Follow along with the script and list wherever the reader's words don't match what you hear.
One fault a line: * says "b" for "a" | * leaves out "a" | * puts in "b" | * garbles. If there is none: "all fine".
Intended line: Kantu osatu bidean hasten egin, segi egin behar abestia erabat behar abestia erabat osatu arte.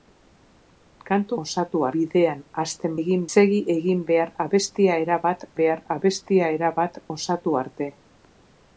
all fine